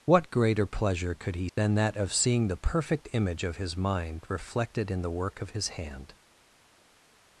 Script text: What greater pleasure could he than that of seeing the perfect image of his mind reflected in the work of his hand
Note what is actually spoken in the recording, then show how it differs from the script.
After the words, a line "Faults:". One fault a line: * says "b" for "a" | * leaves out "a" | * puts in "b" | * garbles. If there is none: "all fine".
What greater pleasure could he than that of seeing the perfect image of his mind reflected in the work of his hand
Faults:
all fine